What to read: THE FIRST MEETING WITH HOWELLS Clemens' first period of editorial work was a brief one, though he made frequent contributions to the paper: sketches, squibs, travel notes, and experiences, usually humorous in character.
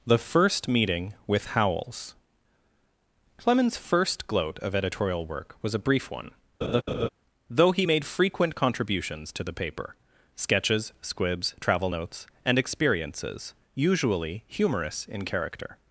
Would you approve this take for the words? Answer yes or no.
no